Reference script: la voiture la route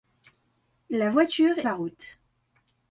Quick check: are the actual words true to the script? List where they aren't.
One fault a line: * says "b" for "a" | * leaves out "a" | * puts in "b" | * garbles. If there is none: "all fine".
all fine